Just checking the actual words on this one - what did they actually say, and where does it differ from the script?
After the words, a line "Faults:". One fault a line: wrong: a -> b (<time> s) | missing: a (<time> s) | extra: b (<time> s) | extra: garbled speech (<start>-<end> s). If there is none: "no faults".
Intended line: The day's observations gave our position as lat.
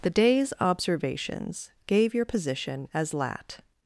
The day's observations gave your position as lat.
Faults:
wrong: our -> your (2.1 s)